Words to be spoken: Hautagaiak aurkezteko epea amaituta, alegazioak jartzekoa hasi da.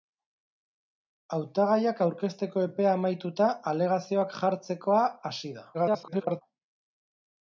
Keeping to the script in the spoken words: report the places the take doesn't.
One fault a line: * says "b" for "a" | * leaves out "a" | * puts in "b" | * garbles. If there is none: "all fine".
* garbles